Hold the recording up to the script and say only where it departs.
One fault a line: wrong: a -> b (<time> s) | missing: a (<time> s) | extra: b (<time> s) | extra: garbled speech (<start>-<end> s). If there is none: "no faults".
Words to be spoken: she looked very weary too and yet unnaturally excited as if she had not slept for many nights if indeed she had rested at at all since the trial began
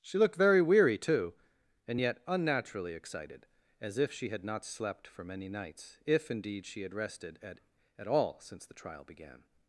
no faults